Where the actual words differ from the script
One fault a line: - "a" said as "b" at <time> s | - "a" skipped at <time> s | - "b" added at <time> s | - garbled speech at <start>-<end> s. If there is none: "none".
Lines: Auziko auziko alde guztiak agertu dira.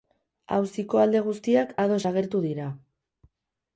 - "auziko" skipped at 1.0 s
- "ados" added at 1.9 s